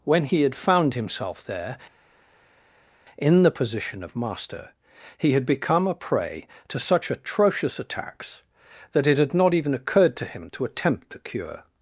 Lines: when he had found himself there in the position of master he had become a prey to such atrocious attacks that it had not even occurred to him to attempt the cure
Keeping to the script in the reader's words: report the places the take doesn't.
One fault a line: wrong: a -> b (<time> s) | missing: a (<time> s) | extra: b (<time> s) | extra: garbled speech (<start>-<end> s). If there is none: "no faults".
no faults